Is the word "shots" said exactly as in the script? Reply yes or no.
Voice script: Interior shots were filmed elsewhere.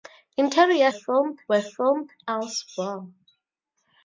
no